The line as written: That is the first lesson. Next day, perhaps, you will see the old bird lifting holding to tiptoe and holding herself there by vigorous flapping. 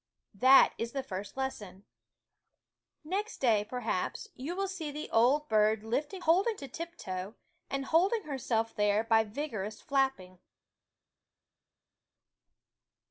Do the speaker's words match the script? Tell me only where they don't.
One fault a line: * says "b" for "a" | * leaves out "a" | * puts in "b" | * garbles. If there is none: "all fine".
all fine